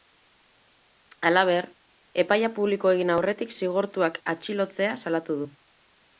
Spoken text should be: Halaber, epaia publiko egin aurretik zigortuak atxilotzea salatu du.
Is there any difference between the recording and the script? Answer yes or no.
no